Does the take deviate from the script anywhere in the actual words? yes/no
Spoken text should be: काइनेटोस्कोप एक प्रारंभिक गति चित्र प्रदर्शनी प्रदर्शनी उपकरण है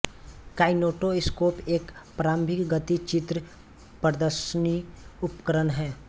yes